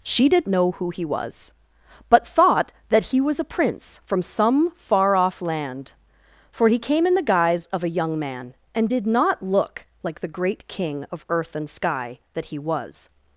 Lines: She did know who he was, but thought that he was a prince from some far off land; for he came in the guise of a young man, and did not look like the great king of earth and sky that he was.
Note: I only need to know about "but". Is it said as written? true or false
true